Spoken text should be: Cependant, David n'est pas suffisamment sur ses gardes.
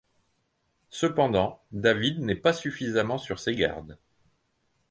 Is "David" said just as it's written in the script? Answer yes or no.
yes